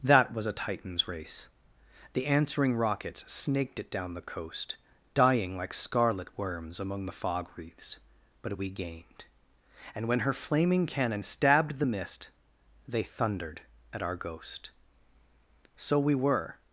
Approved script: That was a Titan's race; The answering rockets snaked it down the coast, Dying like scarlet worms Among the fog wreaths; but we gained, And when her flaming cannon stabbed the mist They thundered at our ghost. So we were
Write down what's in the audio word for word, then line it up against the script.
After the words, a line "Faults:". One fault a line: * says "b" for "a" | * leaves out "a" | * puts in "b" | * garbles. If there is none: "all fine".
That was a Titan's race; The answering rockets snaked it down the coast, Dying like scarlet worms Among the fog wreaths; but we gained, And when her flaming cannon stabbed the mist They thundered at our ghost. So we were
Faults:
all fine